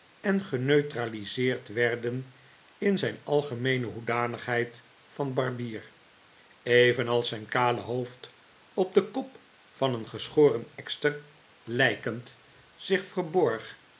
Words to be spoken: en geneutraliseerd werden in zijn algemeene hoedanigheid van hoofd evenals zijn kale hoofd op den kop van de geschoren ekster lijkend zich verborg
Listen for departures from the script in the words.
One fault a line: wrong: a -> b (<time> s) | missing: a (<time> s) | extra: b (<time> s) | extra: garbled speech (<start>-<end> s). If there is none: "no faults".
wrong: hoofd -> barbier (5.3 s)
wrong: de -> een (9.9 s)